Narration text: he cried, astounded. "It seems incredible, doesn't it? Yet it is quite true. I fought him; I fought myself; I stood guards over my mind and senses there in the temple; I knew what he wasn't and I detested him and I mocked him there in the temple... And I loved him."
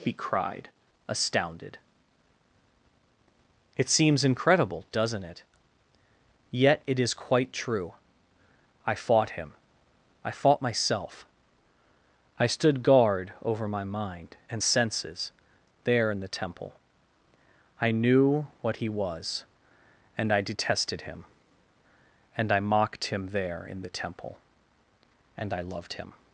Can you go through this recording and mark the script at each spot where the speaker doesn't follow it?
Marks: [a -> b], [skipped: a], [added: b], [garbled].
he cried, astounded. "It seems incredible, doesn't it? Yet it is quite true. I fought him; I fought myself; I stood [guards -> guard] over my mind and senses there in the temple; I knew what he [wasn't -> was] and I detested him and I mocked him there in the temple... And I loved him."